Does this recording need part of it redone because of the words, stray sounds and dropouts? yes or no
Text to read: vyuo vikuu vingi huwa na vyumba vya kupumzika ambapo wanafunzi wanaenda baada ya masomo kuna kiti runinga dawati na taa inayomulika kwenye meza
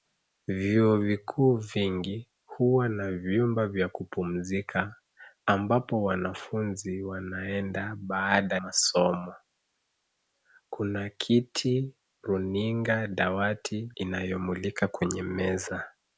yes